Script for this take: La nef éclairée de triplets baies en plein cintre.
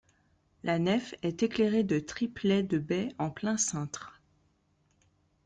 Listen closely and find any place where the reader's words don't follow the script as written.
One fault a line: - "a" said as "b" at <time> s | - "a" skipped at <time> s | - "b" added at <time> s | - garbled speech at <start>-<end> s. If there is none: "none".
- "est" added at 1.2 s
- "de" added at 2.6 s